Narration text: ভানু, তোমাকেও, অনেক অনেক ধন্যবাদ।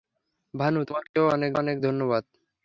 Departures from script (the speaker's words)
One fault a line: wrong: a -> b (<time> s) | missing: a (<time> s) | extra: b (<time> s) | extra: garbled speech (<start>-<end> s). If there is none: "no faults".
no faults